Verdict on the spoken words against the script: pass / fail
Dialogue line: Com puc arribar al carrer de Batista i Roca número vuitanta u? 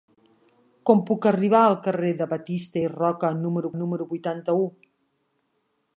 fail